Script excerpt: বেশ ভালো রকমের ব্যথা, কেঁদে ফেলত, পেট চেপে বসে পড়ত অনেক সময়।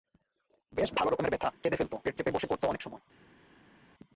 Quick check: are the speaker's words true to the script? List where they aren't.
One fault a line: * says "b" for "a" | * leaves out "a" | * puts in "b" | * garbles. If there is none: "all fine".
all fine